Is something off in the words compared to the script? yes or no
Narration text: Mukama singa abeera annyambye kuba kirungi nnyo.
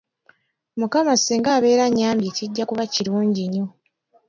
yes